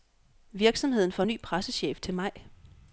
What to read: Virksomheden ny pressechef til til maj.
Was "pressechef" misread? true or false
false